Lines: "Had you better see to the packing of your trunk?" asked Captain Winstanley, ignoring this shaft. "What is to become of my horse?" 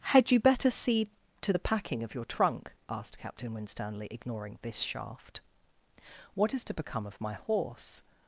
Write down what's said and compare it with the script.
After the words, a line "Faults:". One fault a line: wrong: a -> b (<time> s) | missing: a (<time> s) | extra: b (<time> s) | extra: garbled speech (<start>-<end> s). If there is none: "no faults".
"Had you better see to the packing of your trunk?" asked Captain Winstanley, ignoring this shaft. "What is to become of my horse?"
Faults:
no faults